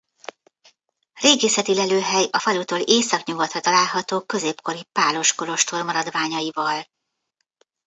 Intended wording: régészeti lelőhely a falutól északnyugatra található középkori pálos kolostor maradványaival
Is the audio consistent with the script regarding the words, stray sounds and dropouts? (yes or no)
yes